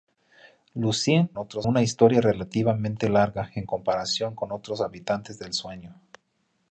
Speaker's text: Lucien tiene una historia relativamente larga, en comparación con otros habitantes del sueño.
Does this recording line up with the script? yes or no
no